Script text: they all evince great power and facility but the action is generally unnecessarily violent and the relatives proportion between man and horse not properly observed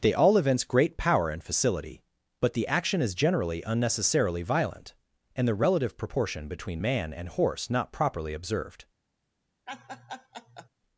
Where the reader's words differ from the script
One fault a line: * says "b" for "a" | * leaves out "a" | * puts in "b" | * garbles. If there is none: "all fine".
* says "relative" for "relatives"